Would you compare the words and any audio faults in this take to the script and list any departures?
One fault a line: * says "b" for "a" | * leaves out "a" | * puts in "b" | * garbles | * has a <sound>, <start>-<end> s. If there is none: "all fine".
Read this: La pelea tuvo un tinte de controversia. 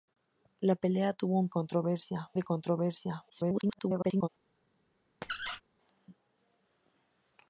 * says "controversia" for "tinte"
* garbles
* has a squeak, 5.2-5.6 s